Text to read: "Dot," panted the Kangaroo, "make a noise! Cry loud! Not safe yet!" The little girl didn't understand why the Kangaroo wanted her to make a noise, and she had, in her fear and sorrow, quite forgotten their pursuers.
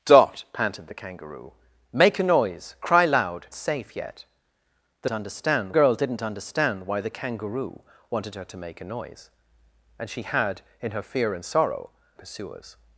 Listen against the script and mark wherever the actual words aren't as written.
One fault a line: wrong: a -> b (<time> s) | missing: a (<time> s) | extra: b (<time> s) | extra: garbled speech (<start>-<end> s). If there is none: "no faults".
missing: Not (3.5 s)
wrong: little -> understand (5.1 s)
missing: quite forgotten their (11.9 s)